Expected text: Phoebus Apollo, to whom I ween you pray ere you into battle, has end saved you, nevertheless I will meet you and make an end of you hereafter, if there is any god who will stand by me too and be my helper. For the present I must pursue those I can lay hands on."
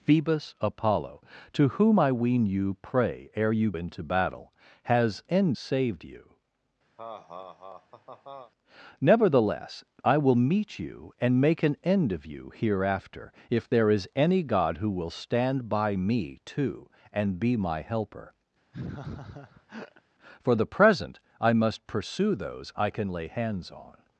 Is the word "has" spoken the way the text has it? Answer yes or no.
yes